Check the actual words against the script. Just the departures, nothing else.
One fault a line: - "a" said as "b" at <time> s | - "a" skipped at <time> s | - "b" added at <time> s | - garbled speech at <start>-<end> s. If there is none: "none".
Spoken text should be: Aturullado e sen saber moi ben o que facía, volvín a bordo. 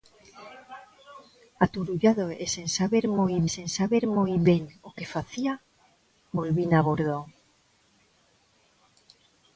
- "sen saber moi" added at 3.5 s